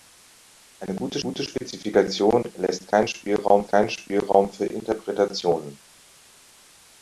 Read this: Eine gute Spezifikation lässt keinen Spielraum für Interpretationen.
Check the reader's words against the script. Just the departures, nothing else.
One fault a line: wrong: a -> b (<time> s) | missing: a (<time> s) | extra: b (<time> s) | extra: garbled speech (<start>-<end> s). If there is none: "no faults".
extra: gute (1.2 s)
extra: keinen Spielraum (3.7 s)